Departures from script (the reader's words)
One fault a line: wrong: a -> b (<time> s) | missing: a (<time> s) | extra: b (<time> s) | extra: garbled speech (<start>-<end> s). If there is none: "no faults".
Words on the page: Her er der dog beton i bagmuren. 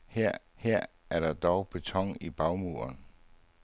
extra: her (0.6 s)